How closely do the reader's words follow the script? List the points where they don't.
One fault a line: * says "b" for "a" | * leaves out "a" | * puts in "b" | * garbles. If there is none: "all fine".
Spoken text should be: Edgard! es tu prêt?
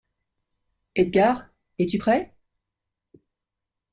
all fine